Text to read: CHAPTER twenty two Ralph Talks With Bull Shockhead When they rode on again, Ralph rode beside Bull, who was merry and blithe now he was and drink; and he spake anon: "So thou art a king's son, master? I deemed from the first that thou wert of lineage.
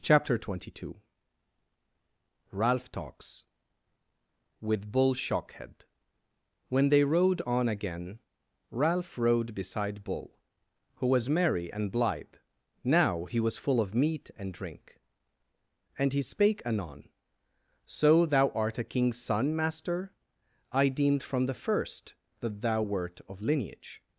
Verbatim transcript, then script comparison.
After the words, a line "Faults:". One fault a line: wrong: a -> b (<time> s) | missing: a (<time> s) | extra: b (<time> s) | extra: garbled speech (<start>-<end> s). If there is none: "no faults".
CHAPTER twenty two Ralph Talks With Bull Shockhead When they rode on again, Ralph rode beside Bull, who was merry and blithe now he was full of meat and drink; and he spake anon: "So thou art a king's son, master? I deemed from the first that thou wert of lineage.
Faults:
extra: full of meat (13.6 s)